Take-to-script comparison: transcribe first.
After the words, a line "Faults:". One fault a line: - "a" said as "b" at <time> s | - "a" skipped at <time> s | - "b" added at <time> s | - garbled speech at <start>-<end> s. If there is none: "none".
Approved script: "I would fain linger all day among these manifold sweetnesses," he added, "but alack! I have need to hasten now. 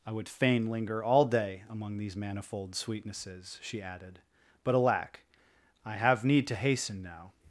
"I would fain linger all day among these manifold sweetnesses," she added, "but alack! I have need to hasten now.
Faults:
- "he" said as "she" at 3.6 s